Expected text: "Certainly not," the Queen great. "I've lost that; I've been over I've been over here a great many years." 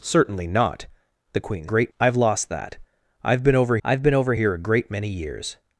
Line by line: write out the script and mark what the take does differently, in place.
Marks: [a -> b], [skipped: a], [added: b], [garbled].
"Certainly not," the Queen great. "I've lost that; I've been over I've been over here a great many years."